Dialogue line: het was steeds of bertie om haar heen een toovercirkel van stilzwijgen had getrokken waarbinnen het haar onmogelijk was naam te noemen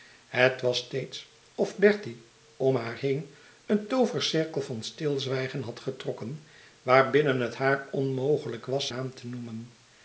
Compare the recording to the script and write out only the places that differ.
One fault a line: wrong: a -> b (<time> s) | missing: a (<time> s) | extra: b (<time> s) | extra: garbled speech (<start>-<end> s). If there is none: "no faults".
no faults